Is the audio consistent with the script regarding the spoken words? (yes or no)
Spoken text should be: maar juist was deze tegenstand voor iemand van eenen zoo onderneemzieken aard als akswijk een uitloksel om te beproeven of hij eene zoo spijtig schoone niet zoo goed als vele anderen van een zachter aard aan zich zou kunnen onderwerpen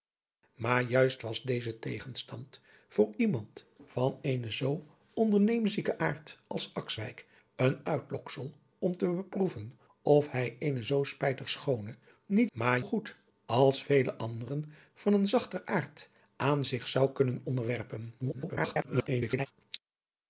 no